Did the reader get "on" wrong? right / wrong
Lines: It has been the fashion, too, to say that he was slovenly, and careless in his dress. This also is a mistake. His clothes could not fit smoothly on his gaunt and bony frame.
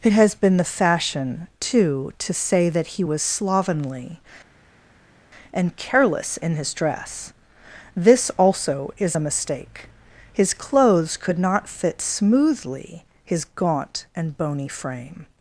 wrong